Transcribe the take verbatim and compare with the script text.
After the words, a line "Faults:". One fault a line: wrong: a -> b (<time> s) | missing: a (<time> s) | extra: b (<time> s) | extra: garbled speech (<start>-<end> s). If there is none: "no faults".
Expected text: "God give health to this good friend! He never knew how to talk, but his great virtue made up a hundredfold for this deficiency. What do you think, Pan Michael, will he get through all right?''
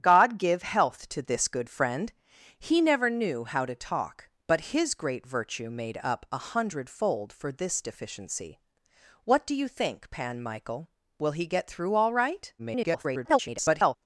"God give health to this good friend! He never knew how to talk, but his great virtue made up a hundredfold for this deficiency. What do you think, Pan Michael, will he get through all right?'' [garbled]
Faults:
extra: garbled speech (12.6-14.0 s)